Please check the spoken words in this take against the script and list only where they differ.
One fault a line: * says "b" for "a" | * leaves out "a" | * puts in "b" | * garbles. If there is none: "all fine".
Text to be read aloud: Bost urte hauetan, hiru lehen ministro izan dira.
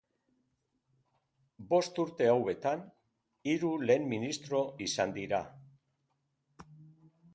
all fine